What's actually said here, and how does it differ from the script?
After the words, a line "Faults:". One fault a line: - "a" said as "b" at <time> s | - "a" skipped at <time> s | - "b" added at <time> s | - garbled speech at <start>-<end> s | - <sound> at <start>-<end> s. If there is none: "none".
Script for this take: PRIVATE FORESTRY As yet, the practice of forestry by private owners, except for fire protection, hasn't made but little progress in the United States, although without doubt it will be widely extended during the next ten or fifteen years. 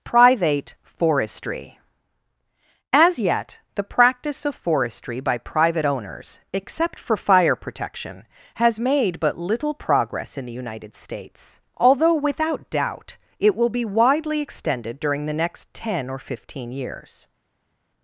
PRIVATE FORESTRY As yet, the practice of forestry by private owners, except for fire protection, has made but little progress in the United States, although without doubt it will be widely extended during the next ten or fifteen years.
Faults:
- "hasn't" said as "has" at 8.5 s